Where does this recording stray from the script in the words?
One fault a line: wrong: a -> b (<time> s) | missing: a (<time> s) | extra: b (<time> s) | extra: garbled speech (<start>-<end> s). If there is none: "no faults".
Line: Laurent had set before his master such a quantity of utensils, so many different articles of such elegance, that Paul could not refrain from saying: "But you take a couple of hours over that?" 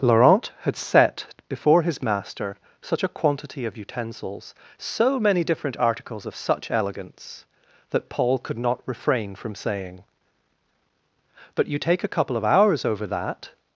no faults